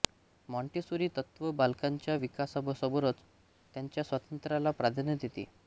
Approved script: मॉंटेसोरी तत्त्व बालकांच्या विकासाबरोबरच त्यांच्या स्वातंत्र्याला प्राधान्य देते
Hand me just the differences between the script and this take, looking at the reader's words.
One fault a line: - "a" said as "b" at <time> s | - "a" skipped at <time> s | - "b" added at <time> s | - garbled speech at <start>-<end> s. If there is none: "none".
none